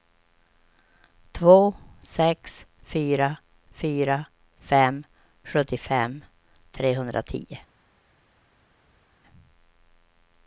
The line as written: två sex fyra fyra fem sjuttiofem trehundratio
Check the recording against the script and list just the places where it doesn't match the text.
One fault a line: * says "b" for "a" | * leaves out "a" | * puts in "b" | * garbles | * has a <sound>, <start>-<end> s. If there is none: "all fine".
all fine